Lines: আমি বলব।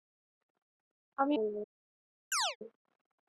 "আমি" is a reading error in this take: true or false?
false